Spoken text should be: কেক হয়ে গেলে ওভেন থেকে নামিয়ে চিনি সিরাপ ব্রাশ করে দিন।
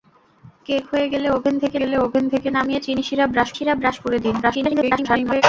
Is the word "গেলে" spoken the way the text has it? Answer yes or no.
yes